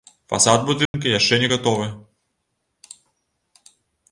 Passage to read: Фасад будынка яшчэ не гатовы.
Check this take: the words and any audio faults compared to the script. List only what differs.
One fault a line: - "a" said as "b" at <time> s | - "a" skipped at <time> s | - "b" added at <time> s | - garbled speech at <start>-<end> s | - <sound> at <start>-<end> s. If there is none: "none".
- dropout at 0.9-0.9 s